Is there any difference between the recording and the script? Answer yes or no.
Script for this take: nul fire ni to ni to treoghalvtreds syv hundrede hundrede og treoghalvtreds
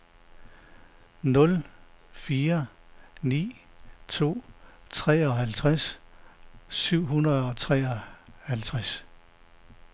yes